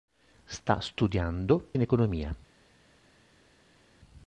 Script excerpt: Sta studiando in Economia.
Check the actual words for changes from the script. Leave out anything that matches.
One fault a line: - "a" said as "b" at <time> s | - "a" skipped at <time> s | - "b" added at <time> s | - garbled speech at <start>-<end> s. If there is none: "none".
none